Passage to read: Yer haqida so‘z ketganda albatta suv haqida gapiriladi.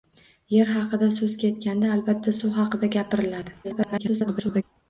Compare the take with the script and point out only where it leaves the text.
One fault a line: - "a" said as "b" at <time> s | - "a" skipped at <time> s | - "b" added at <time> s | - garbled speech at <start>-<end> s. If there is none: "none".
- garbled speech at 3.6-4.6 s